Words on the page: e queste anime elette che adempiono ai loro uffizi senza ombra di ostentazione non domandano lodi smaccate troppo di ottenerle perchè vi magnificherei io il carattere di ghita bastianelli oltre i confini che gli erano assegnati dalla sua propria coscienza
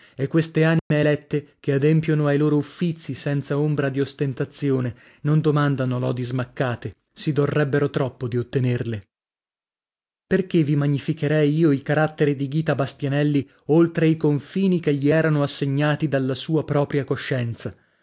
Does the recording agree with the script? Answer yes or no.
no